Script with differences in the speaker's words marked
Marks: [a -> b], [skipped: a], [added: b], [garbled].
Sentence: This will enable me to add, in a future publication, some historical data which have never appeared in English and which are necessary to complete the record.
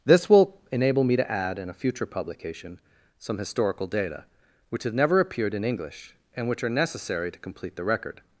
This will enable me to add, in a future publication, some historical data which have never appeared in English and which are necessary to complete the record.